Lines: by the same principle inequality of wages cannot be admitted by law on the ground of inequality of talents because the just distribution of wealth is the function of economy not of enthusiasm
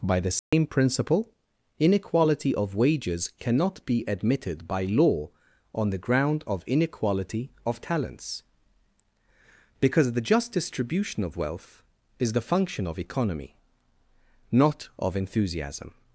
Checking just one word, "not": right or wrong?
right